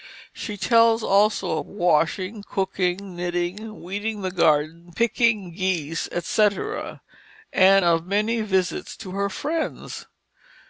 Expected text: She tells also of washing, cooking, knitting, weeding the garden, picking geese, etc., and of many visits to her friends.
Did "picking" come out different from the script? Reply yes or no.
no